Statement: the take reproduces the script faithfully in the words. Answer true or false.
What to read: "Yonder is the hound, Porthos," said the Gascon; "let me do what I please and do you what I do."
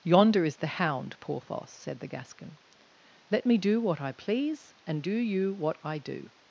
true